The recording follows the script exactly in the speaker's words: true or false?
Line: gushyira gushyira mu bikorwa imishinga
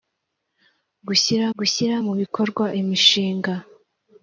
true